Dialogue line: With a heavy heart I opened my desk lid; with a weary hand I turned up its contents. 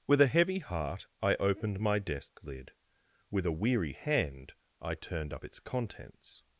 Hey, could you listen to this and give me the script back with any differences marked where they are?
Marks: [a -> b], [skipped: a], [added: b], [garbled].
With a heavy heart I opened my desk lid; with a weary hand I turned up its contents.